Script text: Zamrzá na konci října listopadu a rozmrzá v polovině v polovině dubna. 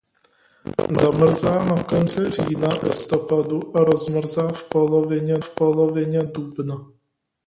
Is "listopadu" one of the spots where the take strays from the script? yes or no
no